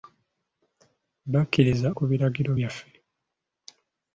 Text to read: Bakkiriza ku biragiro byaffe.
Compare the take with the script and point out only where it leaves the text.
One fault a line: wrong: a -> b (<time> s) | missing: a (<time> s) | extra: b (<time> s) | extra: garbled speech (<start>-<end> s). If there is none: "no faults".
no faults